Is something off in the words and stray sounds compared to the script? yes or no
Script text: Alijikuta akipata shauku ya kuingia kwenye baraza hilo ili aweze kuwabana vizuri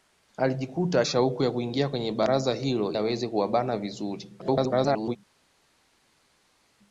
yes